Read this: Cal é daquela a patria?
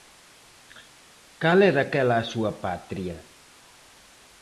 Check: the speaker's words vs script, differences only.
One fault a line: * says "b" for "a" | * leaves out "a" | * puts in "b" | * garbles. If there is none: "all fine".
* puts in "súa"